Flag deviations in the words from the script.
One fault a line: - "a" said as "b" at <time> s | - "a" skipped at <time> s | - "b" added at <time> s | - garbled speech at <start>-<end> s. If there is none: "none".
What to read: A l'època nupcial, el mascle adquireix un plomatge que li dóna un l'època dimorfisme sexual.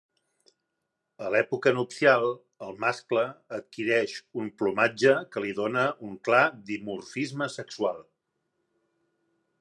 - "l'època" said as "clar" at 6.3 s